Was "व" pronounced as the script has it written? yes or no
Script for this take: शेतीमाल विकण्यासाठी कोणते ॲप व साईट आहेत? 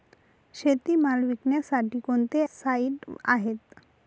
no